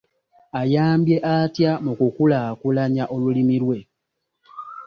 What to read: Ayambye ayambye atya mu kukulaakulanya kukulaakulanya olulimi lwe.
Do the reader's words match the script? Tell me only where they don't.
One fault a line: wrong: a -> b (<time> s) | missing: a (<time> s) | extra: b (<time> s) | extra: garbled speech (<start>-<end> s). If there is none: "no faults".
missing: ayambye (1.1 s)
missing: kukulaakulanya (3.0 s)